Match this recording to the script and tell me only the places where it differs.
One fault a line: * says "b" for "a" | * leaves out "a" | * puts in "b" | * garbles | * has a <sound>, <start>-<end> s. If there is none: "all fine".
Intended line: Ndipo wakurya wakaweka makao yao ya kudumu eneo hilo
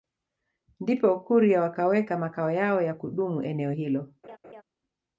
* has a laugh, 4.2-4.6 s